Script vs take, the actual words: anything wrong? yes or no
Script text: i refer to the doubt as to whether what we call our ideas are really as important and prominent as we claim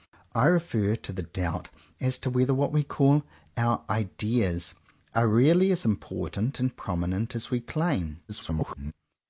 yes